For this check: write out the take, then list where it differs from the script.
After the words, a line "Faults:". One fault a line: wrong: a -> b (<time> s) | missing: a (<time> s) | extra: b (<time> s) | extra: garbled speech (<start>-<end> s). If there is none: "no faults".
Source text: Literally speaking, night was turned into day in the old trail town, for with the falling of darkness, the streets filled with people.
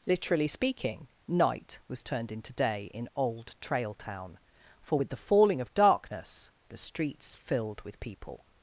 Literally speaking, night was turned into day in old trail town, for with the falling of darkness, the streets filled with people.
Faults:
missing: the (3.1 s)